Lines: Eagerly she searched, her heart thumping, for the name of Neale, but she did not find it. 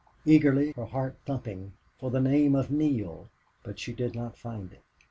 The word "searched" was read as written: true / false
false